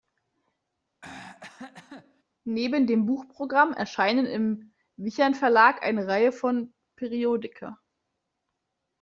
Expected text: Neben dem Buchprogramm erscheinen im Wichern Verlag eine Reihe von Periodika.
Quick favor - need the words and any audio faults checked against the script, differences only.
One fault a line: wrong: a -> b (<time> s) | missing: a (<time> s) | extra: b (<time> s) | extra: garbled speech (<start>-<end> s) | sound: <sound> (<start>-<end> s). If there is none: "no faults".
sound: throat clearing (1.0-2.2 s)